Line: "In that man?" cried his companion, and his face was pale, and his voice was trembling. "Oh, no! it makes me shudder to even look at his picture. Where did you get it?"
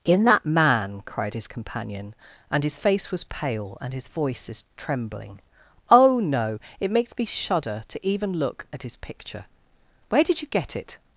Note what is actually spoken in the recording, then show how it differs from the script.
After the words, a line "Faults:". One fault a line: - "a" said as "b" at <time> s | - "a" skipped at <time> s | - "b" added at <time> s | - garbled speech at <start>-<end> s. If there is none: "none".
"In that man?" cried his companion, and his face was pale, and his voice is trembling. "Oh, no! it makes me shudder to even look at his picture. Where did you get it?"
Faults:
- "was" said as "is" at 4.5 s